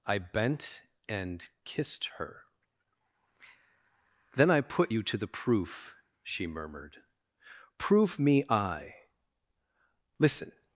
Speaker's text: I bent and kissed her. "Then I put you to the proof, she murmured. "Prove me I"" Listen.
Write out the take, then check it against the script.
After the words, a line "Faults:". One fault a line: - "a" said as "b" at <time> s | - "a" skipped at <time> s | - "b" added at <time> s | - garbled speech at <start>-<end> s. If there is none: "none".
I bent and kissed her. "Then I put you to the proof, she murmured. "Prove me I"" Listen.
Faults:
none